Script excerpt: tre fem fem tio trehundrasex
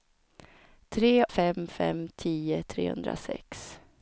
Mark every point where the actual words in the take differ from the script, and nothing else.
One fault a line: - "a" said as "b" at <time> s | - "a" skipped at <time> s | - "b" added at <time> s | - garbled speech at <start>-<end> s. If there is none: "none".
none